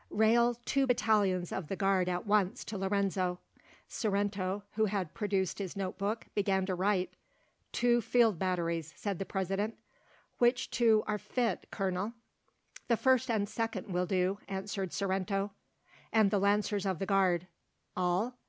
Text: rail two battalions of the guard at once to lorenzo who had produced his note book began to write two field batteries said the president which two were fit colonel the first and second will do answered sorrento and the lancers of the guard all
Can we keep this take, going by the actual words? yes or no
no